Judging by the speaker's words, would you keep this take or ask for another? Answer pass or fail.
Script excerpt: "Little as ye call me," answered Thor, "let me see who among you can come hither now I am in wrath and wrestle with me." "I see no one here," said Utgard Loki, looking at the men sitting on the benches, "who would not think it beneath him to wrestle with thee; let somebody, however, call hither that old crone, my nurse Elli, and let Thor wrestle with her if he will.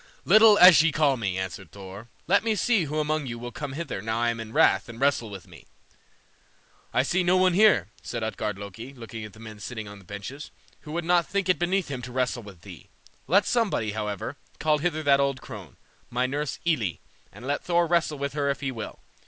fail